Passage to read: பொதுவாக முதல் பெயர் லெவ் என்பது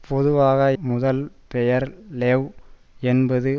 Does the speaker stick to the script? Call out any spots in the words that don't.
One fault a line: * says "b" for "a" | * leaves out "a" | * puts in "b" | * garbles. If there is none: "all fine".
all fine